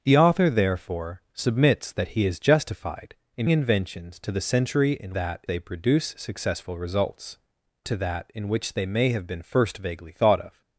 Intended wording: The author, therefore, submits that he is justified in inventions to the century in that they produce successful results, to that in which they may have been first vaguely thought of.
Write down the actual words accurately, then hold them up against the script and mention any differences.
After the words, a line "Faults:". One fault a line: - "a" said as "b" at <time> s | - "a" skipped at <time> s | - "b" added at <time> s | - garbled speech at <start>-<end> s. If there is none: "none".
The author, therefore, submits that he is justified in inventions to the century in that they produce successful results, to that in which they may have been first vaguely thought of.
Faults:
none